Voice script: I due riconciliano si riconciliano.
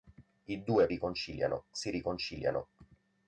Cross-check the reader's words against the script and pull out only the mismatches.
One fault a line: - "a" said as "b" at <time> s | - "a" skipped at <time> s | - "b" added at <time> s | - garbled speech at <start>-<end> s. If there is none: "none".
none